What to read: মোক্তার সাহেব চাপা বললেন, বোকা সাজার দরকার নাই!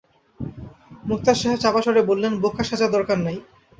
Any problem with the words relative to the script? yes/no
yes